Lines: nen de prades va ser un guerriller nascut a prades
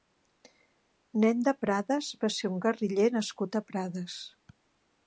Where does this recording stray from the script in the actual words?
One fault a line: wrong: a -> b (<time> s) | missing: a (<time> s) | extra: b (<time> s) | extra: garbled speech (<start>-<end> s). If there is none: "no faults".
no faults